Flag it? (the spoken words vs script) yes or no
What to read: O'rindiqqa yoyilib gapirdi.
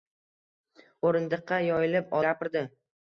no